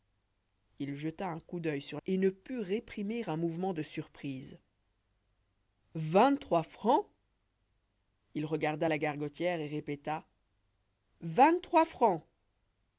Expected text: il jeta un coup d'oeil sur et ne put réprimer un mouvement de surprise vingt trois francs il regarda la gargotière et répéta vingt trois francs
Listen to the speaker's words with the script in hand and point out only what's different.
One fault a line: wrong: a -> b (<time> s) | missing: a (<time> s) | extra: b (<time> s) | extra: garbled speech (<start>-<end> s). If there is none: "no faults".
no faults